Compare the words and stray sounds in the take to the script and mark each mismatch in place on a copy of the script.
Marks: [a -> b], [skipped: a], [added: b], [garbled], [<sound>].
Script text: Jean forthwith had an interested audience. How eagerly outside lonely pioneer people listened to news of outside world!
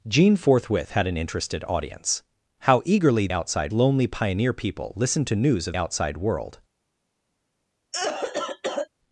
Jean forthwith had an interested audience. How eagerly outside lonely pioneer people listened to news of outside world! [cough]